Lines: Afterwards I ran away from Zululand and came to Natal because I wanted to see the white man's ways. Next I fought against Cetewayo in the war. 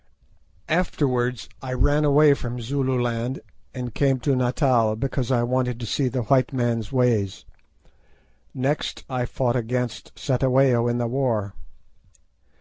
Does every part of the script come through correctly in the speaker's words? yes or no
yes